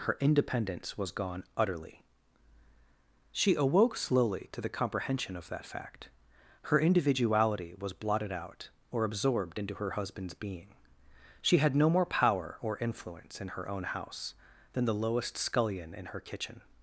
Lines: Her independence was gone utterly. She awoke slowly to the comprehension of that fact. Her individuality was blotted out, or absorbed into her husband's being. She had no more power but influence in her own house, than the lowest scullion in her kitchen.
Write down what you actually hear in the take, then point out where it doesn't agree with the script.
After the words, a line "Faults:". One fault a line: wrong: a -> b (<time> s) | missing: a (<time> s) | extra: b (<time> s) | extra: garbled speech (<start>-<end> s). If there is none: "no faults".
Her independence was gone utterly. She awoke slowly to the comprehension of that fact. Her individuality was blotted out, or absorbed into her husband's being. She had no more power or influence in her own house, than the lowest scullion in her kitchen.
Faults:
wrong: but -> or (12.6 s)